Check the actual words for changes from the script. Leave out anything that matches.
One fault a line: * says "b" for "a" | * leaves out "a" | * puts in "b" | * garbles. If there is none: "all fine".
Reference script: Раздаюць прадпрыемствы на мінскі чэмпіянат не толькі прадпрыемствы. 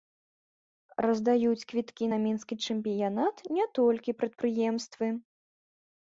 * says "квіткі" for "прадпрыемствы"